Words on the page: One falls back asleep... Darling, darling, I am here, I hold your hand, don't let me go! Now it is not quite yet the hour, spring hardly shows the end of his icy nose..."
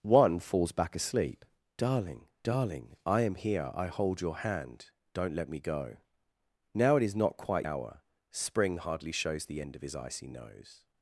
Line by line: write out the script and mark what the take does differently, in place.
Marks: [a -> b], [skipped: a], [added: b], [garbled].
One falls back asleep... Darling, darling, I am here, I hold your hand, don't let me go! Now it is not quite [skipped: yet the] hour, spring hardly shows the end of his icy nose..."